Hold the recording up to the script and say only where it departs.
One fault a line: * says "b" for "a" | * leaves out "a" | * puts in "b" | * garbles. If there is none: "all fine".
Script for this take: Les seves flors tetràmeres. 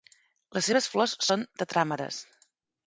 * puts in "són"